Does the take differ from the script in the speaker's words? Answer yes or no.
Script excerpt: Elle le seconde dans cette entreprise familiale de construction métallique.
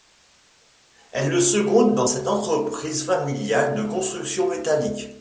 no